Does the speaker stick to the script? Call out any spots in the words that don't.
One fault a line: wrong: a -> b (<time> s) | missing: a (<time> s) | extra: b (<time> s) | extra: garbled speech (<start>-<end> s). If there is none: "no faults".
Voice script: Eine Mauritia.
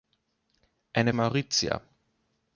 no faults